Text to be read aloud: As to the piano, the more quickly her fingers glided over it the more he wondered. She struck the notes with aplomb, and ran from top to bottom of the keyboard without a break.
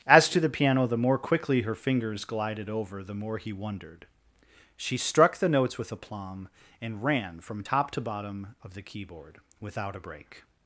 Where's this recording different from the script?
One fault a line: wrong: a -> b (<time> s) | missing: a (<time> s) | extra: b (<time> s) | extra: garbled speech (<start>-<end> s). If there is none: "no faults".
missing: it (3.0 s)